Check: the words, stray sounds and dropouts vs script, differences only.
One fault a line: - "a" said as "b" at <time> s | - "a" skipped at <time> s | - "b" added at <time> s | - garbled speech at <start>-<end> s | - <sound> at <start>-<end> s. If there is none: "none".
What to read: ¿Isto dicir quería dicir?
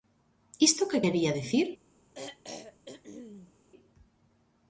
- "dicir" said as "que" at 0.9 s
- throat clearing at 2.1-3.5 s